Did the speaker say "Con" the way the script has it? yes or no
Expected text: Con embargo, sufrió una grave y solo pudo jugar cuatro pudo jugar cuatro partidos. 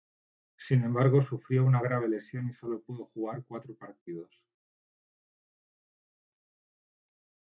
no